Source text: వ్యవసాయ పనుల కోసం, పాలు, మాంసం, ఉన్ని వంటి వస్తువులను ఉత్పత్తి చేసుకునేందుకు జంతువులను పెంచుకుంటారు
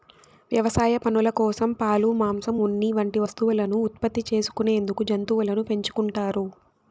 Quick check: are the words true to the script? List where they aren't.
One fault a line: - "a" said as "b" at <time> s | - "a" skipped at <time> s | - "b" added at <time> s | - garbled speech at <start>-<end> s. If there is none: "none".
none